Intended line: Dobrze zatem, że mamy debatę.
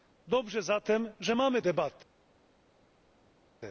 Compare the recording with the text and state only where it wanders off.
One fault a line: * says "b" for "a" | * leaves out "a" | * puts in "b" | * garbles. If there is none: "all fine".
all fine